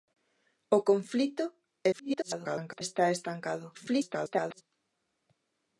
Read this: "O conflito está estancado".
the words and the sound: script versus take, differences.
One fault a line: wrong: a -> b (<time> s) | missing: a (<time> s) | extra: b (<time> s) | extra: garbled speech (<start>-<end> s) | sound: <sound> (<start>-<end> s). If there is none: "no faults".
extra: garbled speech (1.9-2.8 s)
extra: garbled speech (3.7-4.6 s)